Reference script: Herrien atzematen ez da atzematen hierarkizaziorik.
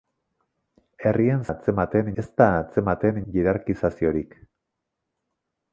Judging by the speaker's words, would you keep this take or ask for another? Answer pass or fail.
pass